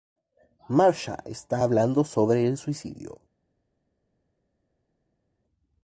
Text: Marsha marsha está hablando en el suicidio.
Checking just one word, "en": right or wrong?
wrong